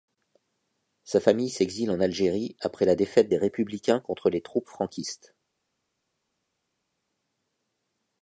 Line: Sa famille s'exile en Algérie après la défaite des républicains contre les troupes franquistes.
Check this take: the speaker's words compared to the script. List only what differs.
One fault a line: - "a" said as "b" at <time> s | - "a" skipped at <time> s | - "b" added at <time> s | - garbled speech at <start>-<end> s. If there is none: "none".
none